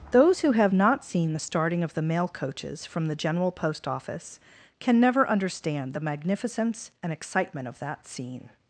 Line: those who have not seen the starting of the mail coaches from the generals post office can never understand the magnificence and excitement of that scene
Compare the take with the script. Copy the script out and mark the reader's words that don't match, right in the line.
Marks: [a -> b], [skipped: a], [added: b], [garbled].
those who have not seen the starting of the mail coaches from the [generals -> general] post office can never understand the magnificence and excitement of that scene